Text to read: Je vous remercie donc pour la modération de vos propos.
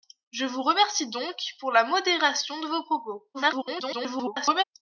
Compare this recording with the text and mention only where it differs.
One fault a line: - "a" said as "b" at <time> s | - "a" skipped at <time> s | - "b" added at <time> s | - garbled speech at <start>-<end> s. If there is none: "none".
- garbled speech at 3.3-4.6 s